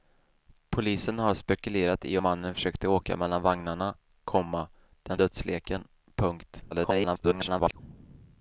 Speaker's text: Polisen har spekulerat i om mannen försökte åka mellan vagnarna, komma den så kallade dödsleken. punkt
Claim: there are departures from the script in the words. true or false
true